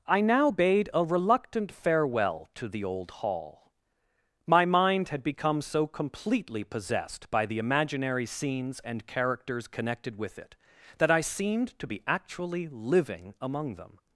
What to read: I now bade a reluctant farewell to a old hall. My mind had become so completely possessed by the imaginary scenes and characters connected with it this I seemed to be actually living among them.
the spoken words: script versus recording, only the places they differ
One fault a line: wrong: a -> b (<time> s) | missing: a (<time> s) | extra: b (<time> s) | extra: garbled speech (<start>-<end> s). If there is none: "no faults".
wrong: a -> the (2.7 s)
wrong: this -> that (11.0 s)